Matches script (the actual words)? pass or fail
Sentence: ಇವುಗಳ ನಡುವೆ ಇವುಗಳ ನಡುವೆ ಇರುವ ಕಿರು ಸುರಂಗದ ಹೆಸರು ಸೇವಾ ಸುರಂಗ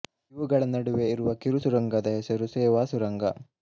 fail